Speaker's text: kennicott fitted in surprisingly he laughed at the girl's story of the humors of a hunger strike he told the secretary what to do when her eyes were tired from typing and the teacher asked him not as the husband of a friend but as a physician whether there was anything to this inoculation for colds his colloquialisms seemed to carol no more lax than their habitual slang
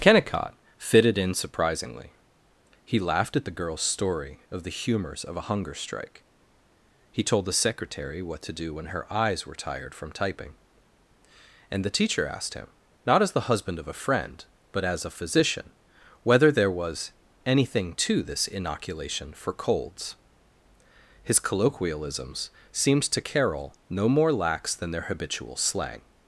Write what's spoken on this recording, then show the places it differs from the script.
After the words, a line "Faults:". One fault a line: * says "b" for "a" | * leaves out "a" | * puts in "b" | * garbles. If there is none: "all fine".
kennicott fitted in surprisingly he laughed at the girl's story of the humors of a hunger strike he told the secretary what to do when her eyes were tired from typing and the teacher asked him not as the husband of a friend but as a physician whether there was anything to this inoculation for colds his colloquialisms seemed to carol no more lax than their habitual slang
Faults:
all fine